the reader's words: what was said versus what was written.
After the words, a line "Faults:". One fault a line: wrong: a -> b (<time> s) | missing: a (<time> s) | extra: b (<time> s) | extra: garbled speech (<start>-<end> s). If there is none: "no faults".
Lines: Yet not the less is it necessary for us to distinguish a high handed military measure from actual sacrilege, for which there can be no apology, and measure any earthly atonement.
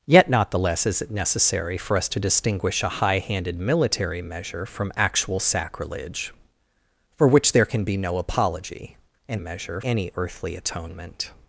Yet not the less is it necessary for us to distinguish a high handed military measure from actual sacrilege, for which there can be no apology, and measure any earthly atonement.
Faults:
no faults